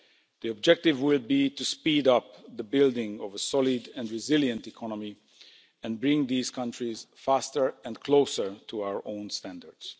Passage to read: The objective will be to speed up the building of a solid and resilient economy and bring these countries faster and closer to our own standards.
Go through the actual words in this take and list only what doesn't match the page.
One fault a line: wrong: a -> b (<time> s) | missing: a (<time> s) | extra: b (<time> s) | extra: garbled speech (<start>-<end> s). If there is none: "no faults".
no faults